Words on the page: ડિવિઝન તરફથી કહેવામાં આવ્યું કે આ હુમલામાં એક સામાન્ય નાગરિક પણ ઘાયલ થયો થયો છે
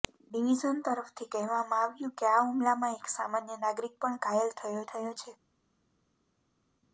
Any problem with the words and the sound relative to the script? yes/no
no